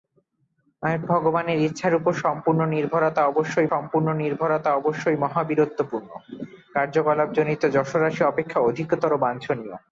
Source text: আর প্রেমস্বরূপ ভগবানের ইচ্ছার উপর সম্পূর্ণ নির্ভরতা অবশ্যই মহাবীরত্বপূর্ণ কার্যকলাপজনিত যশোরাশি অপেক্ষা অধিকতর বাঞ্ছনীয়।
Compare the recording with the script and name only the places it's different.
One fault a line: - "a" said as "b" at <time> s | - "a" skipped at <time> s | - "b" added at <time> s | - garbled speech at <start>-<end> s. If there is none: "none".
- "প্রেমস্বরূপ" skipped at 0.9 s
- "সম্পূর্ণ নির্ভরতা অবশ্যই" added at 3.7 s